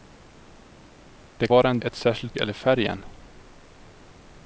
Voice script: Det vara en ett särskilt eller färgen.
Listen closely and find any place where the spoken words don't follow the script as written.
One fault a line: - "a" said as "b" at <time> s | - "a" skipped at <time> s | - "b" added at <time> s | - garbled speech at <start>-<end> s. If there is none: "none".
none